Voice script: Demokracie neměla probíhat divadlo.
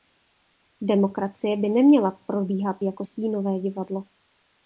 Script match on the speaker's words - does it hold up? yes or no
no